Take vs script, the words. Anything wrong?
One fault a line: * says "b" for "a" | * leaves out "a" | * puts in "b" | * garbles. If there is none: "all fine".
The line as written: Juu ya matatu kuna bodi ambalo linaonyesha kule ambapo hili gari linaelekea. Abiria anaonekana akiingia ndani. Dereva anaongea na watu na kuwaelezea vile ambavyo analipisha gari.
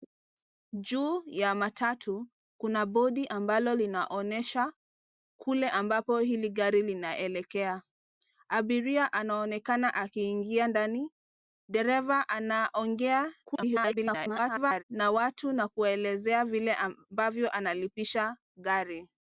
* garbles